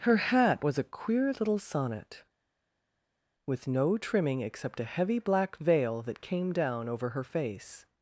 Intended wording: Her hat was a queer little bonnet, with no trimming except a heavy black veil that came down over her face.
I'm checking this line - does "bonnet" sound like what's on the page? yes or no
no